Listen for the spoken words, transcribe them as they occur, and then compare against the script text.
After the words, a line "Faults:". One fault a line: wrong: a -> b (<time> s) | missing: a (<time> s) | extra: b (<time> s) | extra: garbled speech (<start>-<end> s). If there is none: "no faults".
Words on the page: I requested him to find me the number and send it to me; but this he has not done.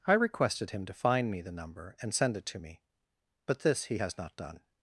I requested him to find me the number and send it to me; but this he has not done.
Faults:
no faults